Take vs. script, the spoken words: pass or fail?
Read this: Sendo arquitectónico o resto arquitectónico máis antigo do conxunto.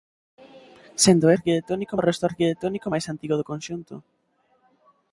pass